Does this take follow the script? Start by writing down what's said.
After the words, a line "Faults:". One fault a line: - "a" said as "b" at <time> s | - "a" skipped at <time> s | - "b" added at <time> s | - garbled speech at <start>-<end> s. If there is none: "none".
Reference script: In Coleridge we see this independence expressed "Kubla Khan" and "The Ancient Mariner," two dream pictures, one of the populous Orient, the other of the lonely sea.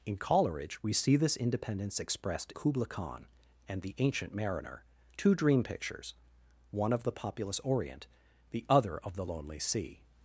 In Coleridge we see this independence expressed "Kubla Khan" and "The Ancient Mariner," two dream pictures, one of the populous Orient, the other of the lonely sea.
Faults:
none